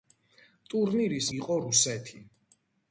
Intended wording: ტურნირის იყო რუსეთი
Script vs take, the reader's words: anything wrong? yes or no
no